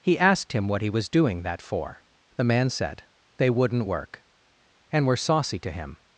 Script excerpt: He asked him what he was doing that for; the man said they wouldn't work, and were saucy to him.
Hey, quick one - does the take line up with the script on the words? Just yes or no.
yes